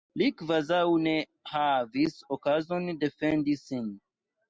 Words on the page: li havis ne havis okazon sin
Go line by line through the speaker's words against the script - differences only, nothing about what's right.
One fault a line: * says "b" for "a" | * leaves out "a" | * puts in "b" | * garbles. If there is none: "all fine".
* says "kvazaŭ" for "havis"
* puts in "defendi"